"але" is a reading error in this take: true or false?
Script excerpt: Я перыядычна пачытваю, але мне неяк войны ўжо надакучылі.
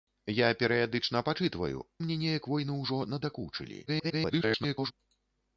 true